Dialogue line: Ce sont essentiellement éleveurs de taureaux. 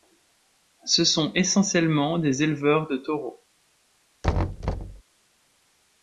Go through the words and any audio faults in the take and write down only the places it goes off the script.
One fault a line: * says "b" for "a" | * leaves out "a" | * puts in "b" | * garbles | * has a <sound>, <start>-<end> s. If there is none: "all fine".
* puts in "des"
* has a thud, 4.2-5.0 s